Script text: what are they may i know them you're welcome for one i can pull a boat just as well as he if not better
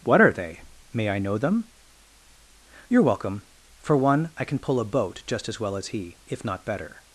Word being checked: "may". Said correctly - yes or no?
yes